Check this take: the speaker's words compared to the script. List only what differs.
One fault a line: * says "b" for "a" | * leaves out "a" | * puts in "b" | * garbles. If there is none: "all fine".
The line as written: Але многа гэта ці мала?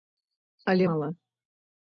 * leaves out "многа гэта ці"